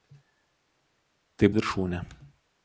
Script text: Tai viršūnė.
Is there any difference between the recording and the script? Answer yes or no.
no